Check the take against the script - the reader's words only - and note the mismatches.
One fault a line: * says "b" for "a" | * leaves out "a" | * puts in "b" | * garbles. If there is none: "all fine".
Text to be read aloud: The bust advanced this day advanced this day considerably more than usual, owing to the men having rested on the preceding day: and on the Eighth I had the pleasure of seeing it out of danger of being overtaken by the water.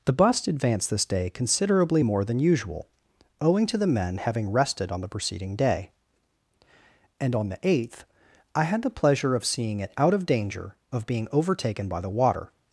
* leaves out "advanced this day"